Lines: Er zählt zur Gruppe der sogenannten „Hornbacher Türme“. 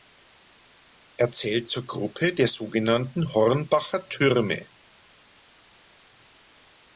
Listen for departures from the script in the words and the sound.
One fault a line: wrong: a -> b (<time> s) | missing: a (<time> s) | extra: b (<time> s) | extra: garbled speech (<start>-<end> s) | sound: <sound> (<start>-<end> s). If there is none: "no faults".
no faults